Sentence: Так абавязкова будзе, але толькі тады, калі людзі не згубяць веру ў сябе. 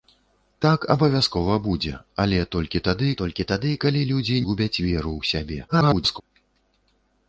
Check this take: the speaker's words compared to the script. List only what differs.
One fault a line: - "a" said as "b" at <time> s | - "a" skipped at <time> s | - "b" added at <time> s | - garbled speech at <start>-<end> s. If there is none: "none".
- "толькі тады" added at 3.2 s
- "не" skipped at 4.4 s
- garbled speech at 5.7-6.2 s